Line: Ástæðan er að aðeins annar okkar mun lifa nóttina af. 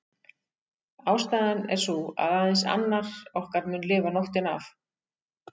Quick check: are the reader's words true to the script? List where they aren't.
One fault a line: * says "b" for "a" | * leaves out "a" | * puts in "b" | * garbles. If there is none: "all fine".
* puts in "sú"